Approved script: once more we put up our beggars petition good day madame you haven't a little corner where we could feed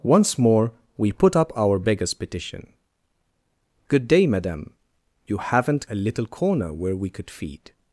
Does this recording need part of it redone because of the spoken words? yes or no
no